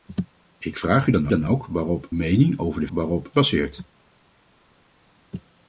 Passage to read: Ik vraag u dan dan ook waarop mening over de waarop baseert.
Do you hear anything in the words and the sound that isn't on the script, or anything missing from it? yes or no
no